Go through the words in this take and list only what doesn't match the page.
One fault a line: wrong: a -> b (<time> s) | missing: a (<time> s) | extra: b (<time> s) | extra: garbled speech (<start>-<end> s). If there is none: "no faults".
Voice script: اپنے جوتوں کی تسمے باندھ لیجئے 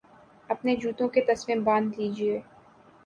wrong: کی -> کے (1.1 s)